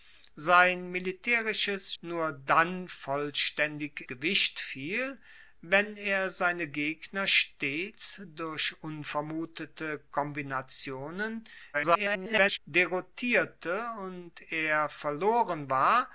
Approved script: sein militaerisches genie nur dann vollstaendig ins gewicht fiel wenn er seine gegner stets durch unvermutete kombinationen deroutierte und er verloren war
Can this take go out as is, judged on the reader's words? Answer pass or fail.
fail